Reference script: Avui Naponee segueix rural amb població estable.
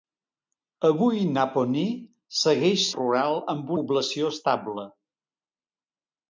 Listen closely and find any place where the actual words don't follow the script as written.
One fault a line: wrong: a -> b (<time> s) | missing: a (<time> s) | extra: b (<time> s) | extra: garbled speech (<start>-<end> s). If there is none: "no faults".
no faults